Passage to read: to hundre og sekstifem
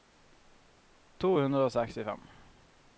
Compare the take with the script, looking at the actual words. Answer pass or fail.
pass